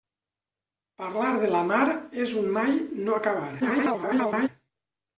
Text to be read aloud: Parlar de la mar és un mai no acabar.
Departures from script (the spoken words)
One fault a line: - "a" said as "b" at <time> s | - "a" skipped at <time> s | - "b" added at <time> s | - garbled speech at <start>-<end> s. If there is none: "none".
- garbled speech at 3.6-4.5 s